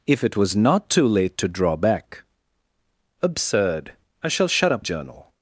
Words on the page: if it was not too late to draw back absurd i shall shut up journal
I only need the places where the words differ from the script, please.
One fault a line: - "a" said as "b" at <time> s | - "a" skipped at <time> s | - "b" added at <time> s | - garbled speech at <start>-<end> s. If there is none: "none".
none